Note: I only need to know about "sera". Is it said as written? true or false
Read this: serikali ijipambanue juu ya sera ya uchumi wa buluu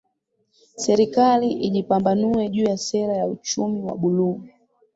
true